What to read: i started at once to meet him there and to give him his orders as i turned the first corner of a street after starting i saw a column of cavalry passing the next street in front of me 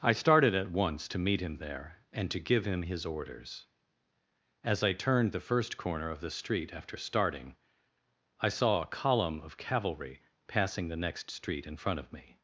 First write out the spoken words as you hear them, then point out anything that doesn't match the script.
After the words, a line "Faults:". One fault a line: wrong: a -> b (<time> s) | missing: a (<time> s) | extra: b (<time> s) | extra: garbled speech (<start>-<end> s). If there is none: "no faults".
i started at once to meet him there and to give him his orders as i turned the first corner of the street after starting i saw a column of cavalry passing the next street in front of me
Faults:
wrong: a -> the (6.2 s)